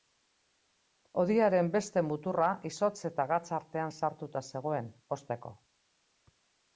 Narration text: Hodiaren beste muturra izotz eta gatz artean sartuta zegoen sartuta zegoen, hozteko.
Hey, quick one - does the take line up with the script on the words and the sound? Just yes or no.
no